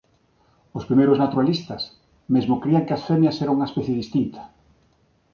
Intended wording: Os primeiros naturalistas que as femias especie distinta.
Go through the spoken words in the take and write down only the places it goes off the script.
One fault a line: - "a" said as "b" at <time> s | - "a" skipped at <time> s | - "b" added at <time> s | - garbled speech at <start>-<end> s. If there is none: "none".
- "mesmo crían" added at 2.3 s
- "eran unha" added at 3.4 s